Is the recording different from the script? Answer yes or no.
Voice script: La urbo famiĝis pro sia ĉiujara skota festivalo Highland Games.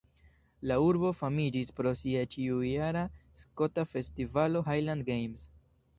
no